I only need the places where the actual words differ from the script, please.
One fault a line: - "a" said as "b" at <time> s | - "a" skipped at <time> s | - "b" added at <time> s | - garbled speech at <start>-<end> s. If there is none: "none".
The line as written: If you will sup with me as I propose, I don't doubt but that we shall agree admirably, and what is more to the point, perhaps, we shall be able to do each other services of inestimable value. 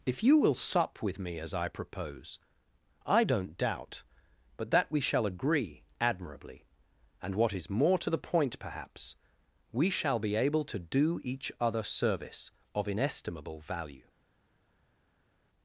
- "services" said as "service" at 11.8 s